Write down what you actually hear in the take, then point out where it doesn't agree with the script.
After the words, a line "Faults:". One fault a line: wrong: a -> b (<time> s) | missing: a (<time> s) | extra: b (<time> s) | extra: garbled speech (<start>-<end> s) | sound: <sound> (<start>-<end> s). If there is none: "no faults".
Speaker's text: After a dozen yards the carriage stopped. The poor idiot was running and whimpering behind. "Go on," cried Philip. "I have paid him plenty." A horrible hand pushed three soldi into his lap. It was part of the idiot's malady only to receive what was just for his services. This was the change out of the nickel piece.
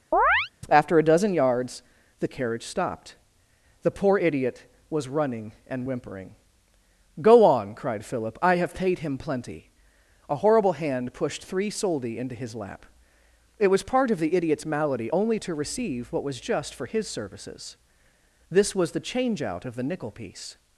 After a dozen yards the carriage stopped. The poor idiot was running and whimpering. "Go on," cried Philip. "I have paid him plenty." A horrible hand pushed three soldi into his lap. It was part of the idiot's malady only to receive what was just for his services. This was the change out of the nickel piece.
Faults:
sound: chirp (0.1-0.5 s)
missing: behind (6.4 s)